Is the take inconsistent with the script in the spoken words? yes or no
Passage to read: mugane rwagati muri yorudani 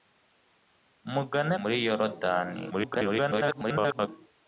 yes